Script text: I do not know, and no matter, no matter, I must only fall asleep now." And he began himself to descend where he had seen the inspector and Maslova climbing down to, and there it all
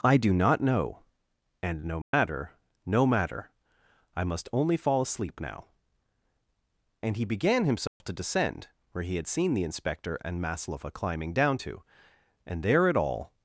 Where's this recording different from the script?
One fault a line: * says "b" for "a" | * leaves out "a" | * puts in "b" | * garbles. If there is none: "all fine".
all fine